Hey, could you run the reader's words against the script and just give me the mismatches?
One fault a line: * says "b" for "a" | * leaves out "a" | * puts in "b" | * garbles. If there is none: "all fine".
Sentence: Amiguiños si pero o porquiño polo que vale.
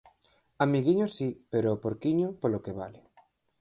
all fine